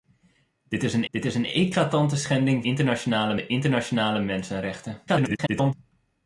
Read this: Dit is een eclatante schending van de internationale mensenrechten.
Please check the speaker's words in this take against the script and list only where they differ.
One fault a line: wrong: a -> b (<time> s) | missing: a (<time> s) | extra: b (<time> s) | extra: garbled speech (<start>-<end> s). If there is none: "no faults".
extra: dit is een (1.1 s)
wrong: van -> internationale (2.6 s)
extra: garbled speech (5.1-5.7 s)